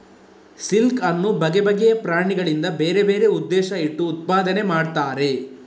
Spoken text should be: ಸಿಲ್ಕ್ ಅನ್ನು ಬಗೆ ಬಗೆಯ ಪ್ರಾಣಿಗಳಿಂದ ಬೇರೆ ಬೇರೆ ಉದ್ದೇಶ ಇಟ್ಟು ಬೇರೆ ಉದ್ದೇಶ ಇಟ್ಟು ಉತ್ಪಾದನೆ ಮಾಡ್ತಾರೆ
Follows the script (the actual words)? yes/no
no